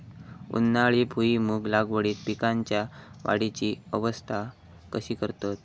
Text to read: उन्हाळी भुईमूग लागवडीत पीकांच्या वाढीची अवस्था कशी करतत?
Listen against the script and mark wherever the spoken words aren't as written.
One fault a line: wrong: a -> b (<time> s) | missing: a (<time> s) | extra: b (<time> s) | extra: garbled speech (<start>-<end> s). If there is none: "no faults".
no faults